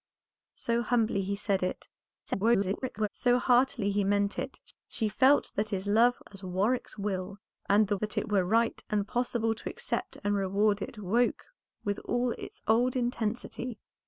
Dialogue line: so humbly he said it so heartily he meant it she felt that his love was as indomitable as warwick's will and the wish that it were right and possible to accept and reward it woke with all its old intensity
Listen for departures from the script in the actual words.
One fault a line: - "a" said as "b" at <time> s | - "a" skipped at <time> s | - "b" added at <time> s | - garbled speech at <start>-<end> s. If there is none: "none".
- garbled speech at 2.3-3.1 s
- "was" skipped at 6.2 s
- "indomitable as" skipped at 6.4 s
- "wish" skipped at 8.0 s